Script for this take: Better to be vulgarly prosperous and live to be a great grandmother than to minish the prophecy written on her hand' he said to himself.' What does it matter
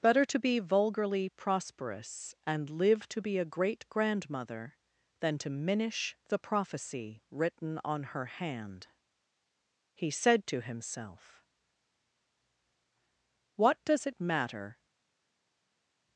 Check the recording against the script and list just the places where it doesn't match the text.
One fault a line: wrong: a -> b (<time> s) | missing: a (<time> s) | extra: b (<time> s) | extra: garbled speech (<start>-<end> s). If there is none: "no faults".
no faults